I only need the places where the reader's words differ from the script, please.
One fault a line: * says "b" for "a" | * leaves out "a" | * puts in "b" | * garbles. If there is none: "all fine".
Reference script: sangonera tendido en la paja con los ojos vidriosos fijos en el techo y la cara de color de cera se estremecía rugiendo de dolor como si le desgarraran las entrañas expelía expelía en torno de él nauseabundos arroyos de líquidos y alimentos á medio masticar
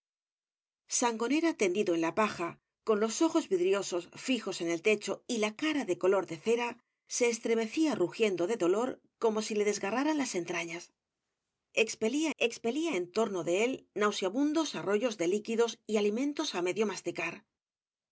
all fine